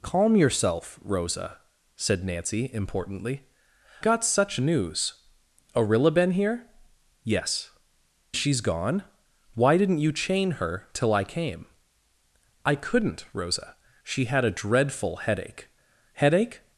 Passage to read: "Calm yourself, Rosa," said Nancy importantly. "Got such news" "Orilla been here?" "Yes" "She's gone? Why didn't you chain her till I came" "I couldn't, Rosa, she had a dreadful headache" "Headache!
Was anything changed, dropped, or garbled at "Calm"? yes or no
no